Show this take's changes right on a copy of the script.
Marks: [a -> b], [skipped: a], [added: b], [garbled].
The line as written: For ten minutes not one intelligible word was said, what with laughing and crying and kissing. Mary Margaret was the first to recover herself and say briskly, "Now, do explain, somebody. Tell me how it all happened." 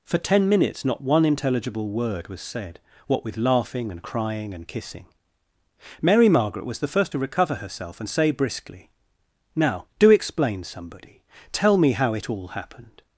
For ten minutes not one intelligible word was said, what with laughing and crying and kissing. Mary Margaret was the first to recover herself and say briskly, "Now, do explain, somebody. Tell me how it all happened."